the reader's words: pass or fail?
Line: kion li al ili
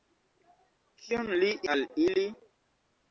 pass